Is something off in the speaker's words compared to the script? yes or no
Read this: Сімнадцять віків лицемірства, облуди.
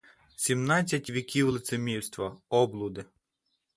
no